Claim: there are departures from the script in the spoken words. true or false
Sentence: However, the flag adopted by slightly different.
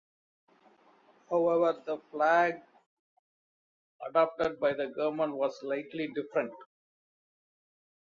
true